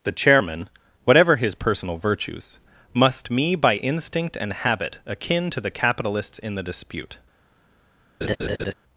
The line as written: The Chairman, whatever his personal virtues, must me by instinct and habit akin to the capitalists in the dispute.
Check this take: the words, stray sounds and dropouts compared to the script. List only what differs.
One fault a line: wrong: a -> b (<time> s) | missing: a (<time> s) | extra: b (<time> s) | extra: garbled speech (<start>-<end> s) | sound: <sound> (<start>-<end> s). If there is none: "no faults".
sound: laugh (8.2-8.7 s)